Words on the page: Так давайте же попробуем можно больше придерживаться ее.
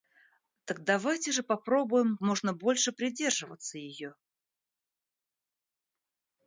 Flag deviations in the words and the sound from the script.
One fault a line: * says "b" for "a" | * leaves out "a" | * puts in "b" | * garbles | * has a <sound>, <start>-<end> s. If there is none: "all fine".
all fine